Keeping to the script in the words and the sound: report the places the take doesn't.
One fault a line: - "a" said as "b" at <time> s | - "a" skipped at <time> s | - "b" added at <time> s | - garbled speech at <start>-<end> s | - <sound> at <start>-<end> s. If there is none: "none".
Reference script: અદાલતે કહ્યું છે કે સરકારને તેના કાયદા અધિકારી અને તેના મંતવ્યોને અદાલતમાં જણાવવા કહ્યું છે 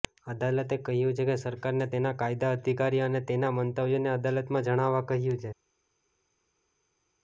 none